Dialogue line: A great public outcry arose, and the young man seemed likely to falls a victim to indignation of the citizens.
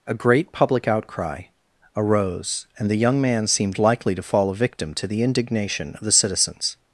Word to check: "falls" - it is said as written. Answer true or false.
false